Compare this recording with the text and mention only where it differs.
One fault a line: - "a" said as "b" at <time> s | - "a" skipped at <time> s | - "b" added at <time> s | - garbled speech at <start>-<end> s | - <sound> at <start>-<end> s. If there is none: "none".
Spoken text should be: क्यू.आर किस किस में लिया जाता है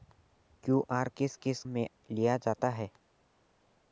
none